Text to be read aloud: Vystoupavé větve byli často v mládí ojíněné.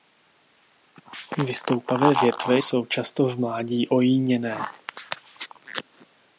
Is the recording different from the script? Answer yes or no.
yes